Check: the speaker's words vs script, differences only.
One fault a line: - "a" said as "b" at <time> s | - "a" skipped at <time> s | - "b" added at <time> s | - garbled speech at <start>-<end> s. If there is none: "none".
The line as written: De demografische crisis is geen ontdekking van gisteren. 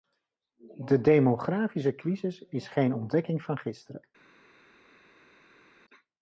none